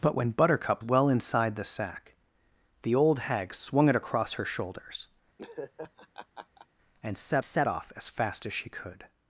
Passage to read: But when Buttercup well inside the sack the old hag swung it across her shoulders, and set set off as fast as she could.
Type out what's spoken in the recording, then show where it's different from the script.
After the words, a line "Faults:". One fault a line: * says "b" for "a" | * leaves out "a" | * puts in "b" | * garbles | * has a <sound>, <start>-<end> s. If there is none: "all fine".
But when Buttercup well inside the sack the old hag swung it across her shoulders, and set set off as fast as she could.
Faults:
* has a laugh, 5.4-6.7 s